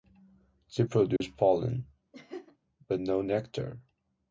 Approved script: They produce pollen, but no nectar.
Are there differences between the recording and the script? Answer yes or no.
no